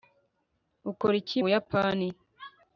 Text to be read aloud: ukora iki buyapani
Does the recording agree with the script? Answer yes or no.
yes